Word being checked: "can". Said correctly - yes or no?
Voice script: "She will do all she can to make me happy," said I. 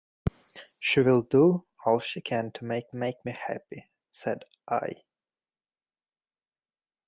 yes